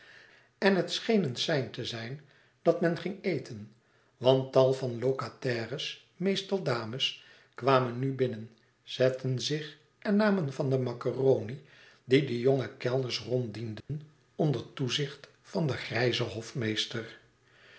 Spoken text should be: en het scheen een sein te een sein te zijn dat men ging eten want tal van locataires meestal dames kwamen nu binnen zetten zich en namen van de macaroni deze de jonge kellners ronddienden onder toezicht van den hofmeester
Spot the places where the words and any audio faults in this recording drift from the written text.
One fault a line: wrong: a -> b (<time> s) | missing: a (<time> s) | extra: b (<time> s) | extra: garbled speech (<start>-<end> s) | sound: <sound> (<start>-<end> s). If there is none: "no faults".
missing: een sein te (1.9 s)
wrong: deze -> die (12.0 s)
sound: dropout (13.8-13.9 s)
extra: grijzen (15.8 s)